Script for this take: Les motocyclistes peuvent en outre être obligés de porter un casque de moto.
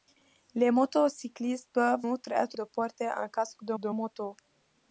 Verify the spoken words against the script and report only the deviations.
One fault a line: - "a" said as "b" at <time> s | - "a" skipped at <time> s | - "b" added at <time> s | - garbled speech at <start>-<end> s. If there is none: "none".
- "en" skipped at 2.1 s
- "obligés" skipped at 2.6 s
- "de" added at 3.8 s